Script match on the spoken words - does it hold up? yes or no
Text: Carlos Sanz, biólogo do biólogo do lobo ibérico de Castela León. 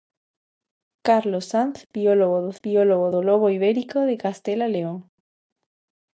yes